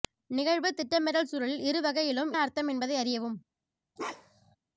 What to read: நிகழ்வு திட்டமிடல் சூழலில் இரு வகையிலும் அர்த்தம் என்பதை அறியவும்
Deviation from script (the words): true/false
false